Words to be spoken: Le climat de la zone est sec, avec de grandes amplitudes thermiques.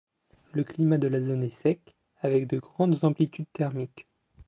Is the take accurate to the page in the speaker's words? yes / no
yes